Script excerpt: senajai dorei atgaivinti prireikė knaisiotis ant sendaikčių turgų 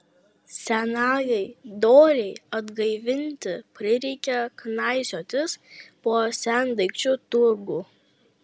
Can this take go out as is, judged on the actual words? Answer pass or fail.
fail